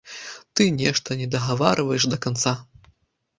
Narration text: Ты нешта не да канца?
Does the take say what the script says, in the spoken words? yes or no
no